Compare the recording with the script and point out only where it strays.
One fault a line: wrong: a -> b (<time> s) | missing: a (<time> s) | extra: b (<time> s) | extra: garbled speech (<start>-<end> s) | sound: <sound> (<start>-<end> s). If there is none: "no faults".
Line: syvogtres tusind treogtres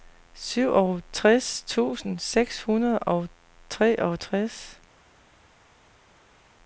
extra: seks hundrede og (2.2 s)